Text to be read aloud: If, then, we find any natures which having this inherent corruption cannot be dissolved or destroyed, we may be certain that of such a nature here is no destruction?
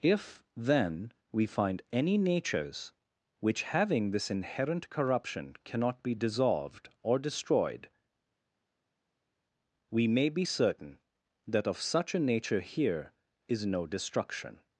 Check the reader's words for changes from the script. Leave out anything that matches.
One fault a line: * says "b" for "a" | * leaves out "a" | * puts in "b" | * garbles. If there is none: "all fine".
all fine